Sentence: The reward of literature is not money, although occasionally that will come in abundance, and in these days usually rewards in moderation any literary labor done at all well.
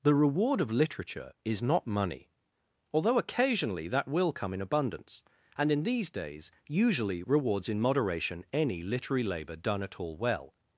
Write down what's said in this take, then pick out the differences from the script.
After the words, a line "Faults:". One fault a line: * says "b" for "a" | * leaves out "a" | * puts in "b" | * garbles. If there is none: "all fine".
The reward of literature is not money, although occasionally that will come in abundance, and in these days usually rewards in moderation any literary labor done at all well.
Faults:
all fine